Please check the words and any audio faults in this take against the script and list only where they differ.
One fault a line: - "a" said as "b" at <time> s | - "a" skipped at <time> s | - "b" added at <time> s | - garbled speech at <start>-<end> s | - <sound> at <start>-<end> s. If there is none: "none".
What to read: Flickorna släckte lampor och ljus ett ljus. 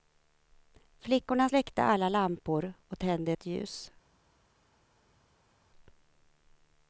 - "alla" added at 1.8 s
- "ljus" said as "tände" at 3.0 s